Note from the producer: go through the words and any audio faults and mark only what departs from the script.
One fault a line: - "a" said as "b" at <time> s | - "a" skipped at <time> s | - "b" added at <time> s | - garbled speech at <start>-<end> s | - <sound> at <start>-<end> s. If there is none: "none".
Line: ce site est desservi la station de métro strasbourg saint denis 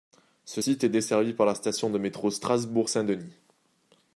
- "par" added at 1.3 s